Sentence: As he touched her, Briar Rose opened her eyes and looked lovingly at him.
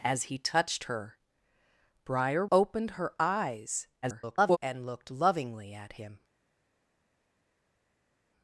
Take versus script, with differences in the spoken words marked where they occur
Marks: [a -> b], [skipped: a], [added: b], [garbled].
As he touched her, Briar [skipped: Rose] opened her eyes [garbled] and looked lovingly at him.